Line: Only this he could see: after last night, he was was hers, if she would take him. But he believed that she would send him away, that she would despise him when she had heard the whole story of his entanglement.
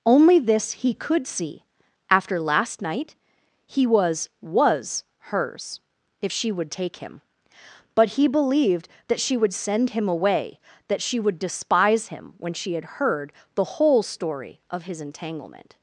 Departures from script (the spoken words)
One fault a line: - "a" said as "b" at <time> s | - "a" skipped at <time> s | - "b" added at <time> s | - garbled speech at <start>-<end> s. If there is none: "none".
none